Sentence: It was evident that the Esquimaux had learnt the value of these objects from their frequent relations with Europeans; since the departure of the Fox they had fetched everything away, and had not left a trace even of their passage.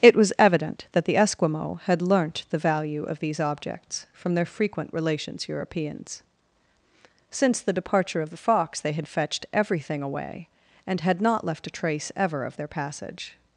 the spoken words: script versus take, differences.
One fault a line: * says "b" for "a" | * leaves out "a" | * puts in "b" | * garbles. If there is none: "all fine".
* leaves out "with"
* says "ever" for "even"